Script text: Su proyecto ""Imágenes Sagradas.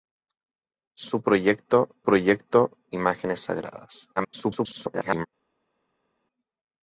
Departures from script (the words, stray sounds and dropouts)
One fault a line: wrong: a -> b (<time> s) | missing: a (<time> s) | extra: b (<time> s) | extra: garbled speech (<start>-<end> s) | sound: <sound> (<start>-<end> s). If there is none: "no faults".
extra: proyecto (2.0 s)
extra: garbled speech (4.2-5.3 s)